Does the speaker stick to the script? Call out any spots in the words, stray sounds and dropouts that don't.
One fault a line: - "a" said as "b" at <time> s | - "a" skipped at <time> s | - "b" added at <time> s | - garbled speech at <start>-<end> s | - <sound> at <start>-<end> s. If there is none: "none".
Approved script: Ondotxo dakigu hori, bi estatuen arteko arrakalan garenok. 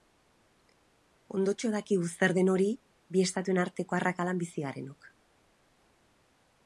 - "zer den" added at 2.1 s
- "bizi" added at 4.5 s